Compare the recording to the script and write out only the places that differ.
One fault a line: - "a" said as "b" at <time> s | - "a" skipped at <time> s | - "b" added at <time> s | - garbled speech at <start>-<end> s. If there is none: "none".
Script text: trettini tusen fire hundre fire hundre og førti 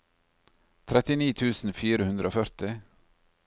- "fire hundre" skipped at 2.3 s